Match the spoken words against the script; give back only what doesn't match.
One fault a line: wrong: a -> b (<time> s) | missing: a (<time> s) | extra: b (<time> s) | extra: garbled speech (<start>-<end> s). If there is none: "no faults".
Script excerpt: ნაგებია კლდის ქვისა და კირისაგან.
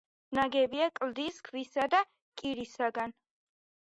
no faults